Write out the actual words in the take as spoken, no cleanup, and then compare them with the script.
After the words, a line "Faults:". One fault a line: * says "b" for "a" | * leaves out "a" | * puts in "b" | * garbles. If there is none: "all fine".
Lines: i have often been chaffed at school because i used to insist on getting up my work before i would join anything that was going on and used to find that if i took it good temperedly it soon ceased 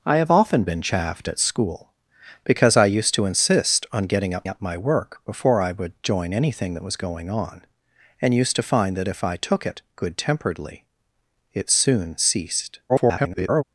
i have often been chaffed at school because i used to insist on getting up up my work before i would join anything that was going on and used to find that if i took it good temperedly it soon ceased [garbled]
Faults:
* puts in "up"
* garbles